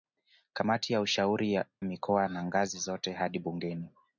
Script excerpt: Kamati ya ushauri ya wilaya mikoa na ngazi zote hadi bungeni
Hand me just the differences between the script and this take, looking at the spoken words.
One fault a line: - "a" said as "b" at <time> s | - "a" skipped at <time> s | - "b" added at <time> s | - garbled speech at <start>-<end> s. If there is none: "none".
- "ya wilaya" skipped at 1.6 s